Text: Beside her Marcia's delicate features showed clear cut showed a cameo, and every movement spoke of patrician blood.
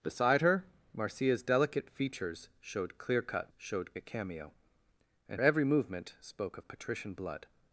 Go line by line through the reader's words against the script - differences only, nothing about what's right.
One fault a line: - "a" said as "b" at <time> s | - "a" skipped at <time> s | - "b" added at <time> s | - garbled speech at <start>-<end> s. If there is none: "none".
none